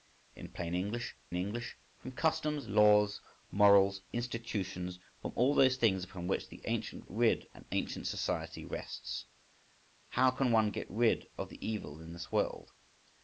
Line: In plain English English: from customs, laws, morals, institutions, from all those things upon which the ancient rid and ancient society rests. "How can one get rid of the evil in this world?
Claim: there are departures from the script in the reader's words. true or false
false